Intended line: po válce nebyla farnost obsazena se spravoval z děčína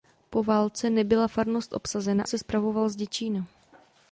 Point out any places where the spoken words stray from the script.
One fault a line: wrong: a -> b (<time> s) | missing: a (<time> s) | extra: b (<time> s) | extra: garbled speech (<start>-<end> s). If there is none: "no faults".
no faults